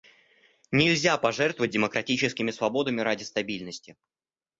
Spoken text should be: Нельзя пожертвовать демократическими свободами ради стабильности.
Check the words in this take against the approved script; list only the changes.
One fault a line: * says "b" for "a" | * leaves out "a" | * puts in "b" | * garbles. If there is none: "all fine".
all fine